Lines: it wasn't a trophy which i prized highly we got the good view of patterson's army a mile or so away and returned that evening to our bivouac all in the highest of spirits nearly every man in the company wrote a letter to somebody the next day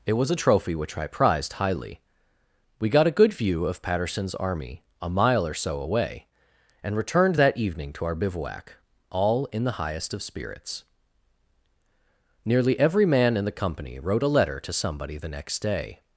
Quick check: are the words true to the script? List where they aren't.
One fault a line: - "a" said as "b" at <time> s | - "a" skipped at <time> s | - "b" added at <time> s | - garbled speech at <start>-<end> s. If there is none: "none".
- "wasn't" said as "was" at 0.1 s
- "the" said as "a" at 3.1 s